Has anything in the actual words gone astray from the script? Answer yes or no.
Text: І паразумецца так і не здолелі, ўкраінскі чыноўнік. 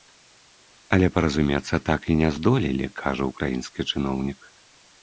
yes